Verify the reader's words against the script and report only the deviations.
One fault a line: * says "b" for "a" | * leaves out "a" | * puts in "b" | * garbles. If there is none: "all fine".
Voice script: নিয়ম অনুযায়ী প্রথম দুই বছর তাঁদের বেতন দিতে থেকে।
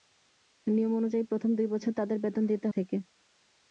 all fine